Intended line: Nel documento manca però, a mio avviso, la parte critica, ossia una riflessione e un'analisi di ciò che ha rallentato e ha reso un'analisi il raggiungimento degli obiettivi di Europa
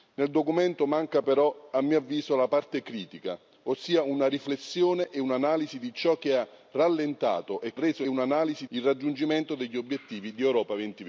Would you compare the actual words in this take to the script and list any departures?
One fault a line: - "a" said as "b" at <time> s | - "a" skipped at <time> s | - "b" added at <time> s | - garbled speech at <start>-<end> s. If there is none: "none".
none